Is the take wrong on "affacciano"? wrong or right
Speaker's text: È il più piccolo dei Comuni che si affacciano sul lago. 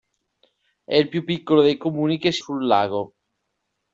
wrong